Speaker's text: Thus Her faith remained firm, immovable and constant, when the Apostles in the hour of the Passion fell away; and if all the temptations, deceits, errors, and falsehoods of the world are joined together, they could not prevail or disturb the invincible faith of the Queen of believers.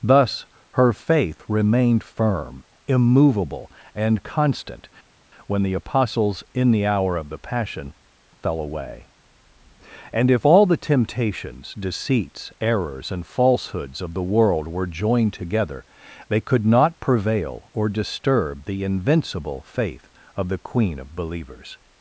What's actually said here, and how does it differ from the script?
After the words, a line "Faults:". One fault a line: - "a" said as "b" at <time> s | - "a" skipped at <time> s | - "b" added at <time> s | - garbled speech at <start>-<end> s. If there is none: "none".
Thus Her faith remained firm, immovable and constant, when the Apostles in the hour of the Passion fell away; and if all the temptations, deceits, errors, and falsehoods of the world were joined together, they could not prevail or disturb the invincible faith of the Queen of believers.
Faults:
- "are" said as "were" at 14.7 s